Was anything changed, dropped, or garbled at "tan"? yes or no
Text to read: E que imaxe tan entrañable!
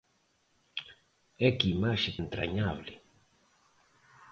yes